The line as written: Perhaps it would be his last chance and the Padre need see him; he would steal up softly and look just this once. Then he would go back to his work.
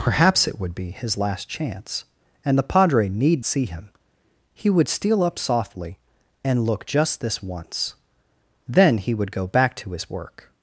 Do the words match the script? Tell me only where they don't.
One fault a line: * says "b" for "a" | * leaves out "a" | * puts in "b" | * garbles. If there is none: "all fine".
all fine